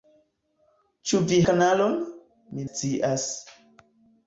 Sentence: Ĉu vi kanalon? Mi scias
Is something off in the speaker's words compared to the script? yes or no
no